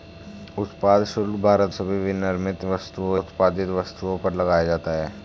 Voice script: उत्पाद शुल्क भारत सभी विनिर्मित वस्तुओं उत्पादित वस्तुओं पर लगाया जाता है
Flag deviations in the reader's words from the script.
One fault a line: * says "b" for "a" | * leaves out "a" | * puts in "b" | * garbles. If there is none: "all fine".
all fine